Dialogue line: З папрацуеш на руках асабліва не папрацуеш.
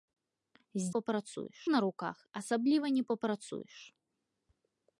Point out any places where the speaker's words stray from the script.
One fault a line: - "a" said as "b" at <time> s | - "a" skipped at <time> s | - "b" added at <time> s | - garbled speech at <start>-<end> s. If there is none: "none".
none